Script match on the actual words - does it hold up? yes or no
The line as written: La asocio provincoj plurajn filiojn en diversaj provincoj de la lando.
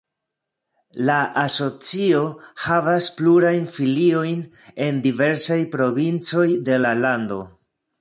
no